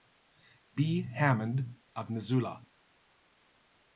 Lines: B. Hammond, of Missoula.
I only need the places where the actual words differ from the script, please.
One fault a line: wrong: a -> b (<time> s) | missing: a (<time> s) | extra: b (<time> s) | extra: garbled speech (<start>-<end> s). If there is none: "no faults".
no faults